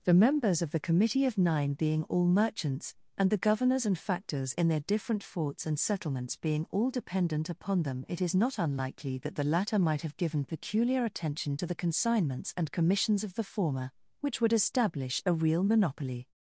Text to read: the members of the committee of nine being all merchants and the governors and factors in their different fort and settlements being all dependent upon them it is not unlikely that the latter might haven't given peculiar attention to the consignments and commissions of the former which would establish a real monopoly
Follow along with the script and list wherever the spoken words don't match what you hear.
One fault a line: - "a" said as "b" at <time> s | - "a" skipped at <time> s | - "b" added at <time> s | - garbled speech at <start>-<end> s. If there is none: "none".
- "fort" said as "forts" at 5.2 s
- "haven't" said as "have" at 10.0 s